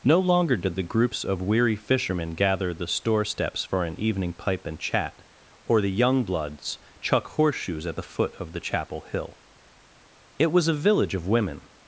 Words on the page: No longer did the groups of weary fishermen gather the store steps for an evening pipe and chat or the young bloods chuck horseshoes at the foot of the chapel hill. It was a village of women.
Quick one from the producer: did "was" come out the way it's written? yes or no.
yes